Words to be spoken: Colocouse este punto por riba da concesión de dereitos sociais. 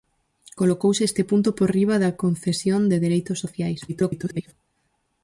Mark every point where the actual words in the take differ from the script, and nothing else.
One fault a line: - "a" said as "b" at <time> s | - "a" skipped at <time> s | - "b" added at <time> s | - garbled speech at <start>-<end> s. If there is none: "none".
- garbled speech at 3.9-4.5 s